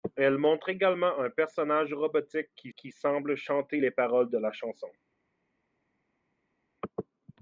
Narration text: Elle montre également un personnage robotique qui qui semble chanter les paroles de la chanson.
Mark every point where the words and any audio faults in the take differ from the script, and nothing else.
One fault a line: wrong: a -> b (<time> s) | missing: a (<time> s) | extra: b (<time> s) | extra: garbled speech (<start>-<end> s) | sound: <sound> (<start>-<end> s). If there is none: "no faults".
no faults